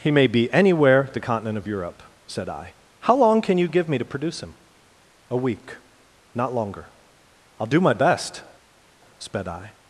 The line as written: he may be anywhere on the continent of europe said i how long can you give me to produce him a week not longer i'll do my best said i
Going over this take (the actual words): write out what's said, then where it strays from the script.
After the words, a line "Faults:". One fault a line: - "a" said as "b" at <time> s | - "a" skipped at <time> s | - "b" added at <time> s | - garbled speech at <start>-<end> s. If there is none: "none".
he may be anywhere the continent of europe said i how long can you give me to produce him a week not longer i'll do my best sped i
Faults:
- "on" skipped at 1.1 s
- "said" said as "sped" at 9.2 s